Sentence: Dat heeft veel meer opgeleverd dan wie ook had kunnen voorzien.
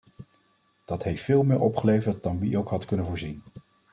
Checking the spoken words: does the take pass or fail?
pass